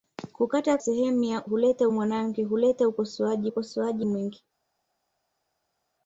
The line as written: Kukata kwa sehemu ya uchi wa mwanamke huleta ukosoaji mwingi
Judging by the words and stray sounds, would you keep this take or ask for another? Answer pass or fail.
fail